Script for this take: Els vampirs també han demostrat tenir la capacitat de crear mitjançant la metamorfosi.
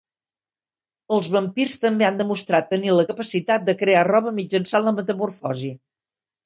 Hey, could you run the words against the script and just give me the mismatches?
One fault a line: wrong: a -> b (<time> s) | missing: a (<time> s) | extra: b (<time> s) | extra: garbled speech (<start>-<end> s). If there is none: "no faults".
extra: roba (4.1 s)